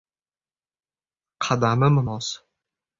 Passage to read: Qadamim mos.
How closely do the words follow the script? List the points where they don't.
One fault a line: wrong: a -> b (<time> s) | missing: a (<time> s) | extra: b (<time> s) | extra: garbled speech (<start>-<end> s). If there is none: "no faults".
no faults